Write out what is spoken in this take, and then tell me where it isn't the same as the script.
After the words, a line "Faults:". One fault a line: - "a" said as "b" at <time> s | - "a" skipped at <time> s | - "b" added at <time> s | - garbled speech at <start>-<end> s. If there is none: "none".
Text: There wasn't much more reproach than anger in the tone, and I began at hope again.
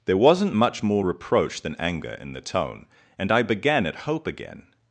There wasn't much more reproach than anger in the tone, and I began at hope again.
Faults:
none